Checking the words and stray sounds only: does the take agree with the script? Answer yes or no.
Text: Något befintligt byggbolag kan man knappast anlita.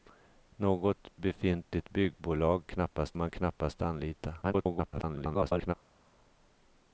no